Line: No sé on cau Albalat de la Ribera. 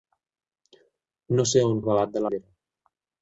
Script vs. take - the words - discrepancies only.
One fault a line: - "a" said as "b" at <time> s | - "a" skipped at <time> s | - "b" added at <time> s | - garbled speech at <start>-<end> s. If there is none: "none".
- "cau" skipped at 1.8 s
- "la" skipped at 2.3 s